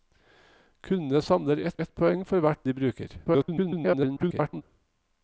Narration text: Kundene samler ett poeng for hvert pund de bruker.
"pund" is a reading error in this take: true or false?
true